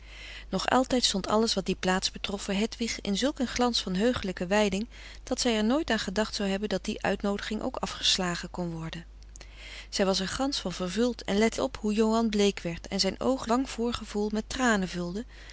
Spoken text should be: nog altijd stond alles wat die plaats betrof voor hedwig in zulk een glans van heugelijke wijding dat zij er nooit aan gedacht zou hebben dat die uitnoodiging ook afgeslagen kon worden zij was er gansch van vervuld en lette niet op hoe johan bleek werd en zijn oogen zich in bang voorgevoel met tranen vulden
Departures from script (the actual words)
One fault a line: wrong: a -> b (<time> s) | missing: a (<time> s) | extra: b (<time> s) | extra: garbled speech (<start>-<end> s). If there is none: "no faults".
missing: niet (11.6 s)
missing: zich in (13.5 s)